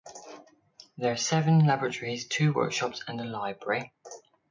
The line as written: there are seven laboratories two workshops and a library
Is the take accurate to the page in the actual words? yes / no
yes